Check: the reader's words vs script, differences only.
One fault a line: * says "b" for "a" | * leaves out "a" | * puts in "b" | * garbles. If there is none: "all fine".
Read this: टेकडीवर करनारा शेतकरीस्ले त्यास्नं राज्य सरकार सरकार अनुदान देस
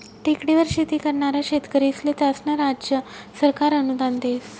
* puts in "शेती"
* leaves out "सरकार"